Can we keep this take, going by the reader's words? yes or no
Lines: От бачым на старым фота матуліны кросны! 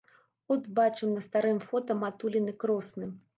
yes